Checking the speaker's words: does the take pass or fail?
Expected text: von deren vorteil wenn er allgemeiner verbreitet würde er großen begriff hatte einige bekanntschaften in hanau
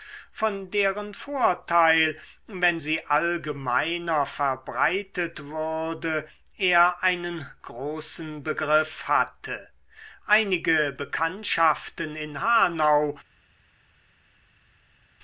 fail